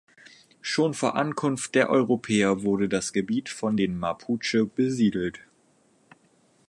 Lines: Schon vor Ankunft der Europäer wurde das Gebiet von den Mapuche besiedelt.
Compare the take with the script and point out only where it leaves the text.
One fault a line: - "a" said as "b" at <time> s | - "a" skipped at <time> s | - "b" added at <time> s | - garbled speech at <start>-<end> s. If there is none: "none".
none